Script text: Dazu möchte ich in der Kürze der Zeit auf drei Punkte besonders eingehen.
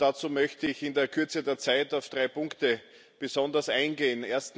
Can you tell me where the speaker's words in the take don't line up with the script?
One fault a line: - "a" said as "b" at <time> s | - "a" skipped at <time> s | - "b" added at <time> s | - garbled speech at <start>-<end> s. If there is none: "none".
none